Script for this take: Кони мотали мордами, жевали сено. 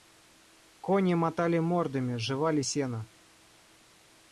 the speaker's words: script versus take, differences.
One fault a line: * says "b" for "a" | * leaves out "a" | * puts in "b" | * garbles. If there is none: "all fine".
all fine